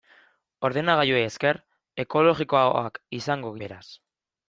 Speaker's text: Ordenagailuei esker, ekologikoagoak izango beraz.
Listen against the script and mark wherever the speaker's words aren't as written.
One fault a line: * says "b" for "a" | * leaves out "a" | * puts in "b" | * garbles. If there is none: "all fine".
all fine